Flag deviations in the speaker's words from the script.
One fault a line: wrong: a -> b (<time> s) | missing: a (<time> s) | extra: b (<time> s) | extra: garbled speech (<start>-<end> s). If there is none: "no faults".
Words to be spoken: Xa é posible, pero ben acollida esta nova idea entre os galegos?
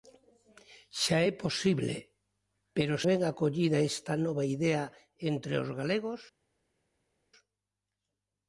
no faults